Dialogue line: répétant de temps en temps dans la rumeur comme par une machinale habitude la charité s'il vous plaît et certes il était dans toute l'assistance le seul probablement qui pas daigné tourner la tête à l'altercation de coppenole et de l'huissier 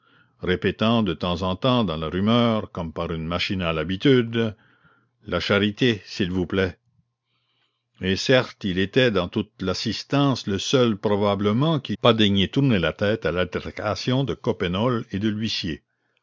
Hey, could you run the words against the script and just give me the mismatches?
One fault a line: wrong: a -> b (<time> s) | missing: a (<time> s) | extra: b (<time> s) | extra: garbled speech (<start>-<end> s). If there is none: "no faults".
no faults